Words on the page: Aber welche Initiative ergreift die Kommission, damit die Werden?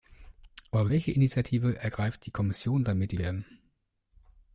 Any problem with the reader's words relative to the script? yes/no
no